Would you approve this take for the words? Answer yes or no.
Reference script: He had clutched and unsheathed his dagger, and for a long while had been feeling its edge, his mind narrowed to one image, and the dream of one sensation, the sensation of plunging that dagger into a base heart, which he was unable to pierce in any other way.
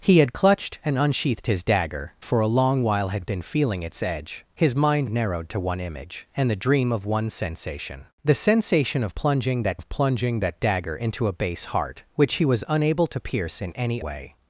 no